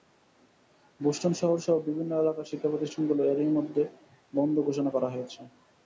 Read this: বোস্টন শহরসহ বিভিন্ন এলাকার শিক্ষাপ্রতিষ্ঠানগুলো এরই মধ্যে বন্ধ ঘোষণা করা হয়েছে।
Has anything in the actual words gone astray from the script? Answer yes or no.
no